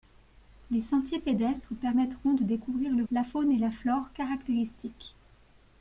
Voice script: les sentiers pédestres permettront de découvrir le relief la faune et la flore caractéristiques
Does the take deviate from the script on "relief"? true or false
true